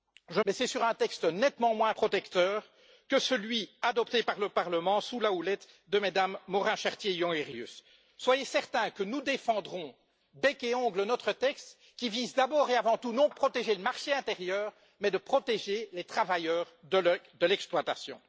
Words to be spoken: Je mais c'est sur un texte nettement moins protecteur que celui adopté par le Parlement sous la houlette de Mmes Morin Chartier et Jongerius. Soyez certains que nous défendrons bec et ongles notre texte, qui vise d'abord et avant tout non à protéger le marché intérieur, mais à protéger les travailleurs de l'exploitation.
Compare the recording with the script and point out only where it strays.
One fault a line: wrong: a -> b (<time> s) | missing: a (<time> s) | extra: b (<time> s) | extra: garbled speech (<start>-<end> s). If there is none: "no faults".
no faults